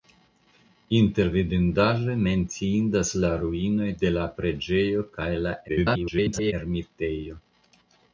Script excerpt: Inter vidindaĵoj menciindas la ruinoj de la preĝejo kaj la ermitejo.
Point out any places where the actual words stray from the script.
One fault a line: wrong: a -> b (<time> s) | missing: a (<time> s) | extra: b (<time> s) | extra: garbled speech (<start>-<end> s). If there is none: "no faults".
extra: garbled speech (5.7-6.5 s)